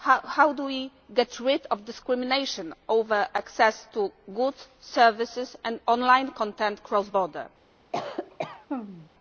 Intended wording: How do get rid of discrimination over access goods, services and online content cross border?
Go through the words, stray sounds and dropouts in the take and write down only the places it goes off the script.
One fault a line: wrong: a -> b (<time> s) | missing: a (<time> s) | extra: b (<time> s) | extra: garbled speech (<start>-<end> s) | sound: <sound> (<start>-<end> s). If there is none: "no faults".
extra: we (0.7 s)
extra: to (3.9 s)
sound: cough (7.9-9.1 s)